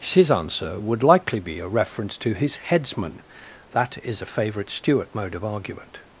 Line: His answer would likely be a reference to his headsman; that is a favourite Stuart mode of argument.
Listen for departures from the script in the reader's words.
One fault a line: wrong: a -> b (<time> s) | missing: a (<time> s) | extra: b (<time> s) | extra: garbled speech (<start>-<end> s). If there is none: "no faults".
no faults